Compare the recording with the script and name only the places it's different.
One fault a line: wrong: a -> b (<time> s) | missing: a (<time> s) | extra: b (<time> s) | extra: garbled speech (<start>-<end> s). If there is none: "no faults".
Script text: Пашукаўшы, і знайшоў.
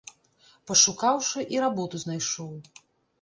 extra: работу (1.6 s)